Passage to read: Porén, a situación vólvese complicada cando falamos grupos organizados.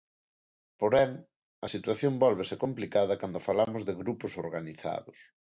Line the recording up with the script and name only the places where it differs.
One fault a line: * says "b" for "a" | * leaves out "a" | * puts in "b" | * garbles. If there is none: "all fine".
* puts in "de"